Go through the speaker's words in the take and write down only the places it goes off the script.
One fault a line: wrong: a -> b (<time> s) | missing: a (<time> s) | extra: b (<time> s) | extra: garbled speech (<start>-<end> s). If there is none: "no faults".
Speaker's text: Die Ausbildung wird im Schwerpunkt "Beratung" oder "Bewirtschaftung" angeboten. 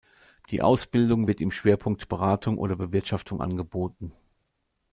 no faults